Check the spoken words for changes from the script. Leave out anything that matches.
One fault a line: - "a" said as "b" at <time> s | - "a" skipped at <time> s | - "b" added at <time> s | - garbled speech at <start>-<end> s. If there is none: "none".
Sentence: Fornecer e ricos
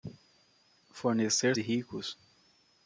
none